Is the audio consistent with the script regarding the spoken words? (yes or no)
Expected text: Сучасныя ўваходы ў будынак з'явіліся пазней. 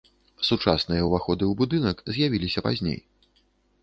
yes